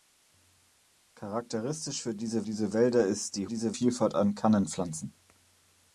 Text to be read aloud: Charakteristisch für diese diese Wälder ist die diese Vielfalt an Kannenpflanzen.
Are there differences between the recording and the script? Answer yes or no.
no